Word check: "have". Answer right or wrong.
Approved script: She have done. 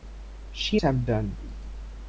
right